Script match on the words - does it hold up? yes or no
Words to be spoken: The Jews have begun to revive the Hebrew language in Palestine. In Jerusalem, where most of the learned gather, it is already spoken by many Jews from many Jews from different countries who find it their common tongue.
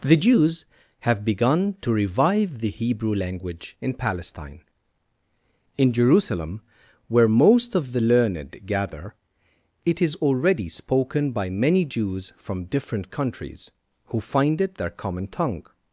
no